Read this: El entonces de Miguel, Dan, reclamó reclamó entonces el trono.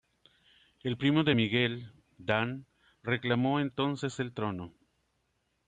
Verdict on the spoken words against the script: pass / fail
fail